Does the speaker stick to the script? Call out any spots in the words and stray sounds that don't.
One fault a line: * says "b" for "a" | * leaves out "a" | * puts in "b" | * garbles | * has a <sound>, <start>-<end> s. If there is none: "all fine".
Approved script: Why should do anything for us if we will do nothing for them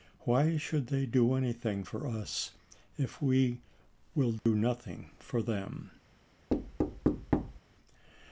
* puts in "they"
* has a dropout, 4.4-4.5 s
* has a thud, 6.5-7.6 s